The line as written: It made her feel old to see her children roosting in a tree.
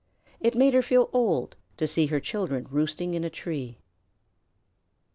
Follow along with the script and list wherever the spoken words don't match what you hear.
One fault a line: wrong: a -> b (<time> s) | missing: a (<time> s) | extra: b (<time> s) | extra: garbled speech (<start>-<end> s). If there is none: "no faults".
no faults